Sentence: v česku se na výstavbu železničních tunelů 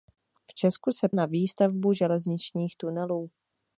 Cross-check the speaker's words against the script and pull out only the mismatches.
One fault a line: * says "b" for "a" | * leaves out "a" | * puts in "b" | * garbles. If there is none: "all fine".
all fine